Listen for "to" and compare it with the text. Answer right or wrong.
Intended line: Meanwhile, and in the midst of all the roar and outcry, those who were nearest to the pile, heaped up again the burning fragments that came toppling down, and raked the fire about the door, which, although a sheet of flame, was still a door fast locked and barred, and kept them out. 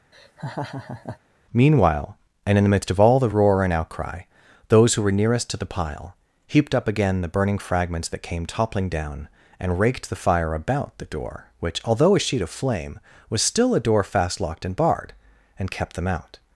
right